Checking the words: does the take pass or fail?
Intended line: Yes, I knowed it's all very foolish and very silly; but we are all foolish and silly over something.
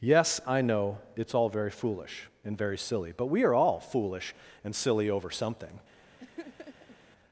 fail